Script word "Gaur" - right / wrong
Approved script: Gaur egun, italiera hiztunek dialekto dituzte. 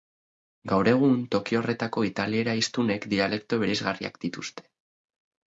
right